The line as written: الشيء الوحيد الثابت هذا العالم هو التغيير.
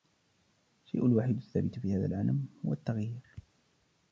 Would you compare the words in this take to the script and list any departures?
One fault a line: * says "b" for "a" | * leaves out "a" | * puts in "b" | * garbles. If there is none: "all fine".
* puts in "في"